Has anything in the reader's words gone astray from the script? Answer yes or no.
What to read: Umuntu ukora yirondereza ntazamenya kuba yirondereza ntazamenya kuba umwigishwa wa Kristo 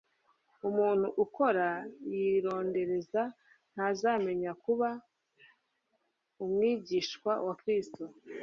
yes